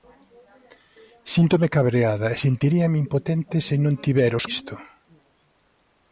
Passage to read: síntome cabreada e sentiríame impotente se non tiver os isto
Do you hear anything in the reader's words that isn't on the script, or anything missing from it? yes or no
no